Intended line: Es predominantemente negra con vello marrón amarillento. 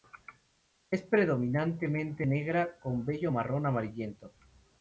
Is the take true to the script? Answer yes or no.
yes